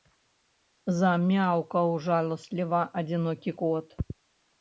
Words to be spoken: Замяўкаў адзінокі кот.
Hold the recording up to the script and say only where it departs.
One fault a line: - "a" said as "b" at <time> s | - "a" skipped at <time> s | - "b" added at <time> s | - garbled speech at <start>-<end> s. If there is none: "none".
- "жаласліва" added at 2.1 s